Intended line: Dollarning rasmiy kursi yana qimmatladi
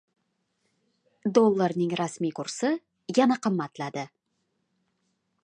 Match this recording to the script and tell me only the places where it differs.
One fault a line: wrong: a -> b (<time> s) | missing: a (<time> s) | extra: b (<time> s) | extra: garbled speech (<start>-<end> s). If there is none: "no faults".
no faults